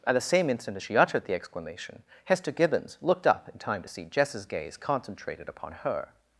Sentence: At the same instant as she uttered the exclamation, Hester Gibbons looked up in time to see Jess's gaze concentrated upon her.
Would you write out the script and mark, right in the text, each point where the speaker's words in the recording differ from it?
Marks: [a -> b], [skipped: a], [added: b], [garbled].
At the same instant as she uttered the exclamation, Hester Gibbons looked up in time to see Jess's gaze concentrated upon her.